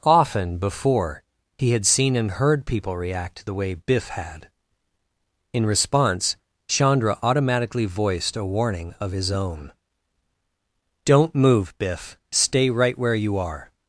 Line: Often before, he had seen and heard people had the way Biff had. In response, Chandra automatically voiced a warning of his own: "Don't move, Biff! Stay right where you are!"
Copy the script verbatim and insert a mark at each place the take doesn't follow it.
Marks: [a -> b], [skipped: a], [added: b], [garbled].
Often before, he had seen and heard people [had -> react] the way Biff had. In response, Chandra automatically voiced a warning of his own: "Don't move, Biff! Stay right where you are!"